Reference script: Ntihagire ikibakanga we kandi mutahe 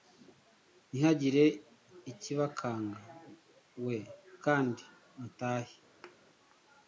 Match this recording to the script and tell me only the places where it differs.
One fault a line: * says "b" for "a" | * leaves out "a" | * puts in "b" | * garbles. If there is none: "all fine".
all fine